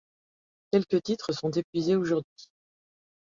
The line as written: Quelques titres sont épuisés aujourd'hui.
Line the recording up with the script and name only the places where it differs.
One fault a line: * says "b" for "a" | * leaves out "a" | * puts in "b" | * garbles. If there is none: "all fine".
all fine